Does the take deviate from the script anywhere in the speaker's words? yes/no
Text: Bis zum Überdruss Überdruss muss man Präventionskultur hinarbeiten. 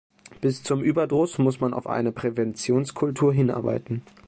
yes